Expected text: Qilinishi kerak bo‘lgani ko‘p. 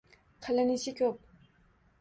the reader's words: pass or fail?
fail